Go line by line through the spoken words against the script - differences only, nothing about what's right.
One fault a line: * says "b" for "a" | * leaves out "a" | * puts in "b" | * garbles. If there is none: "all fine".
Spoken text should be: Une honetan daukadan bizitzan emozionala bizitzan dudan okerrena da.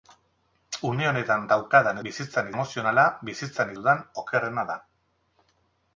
all fine